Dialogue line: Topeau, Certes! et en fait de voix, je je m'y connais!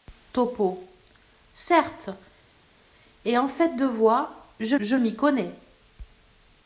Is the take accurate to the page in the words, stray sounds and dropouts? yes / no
yes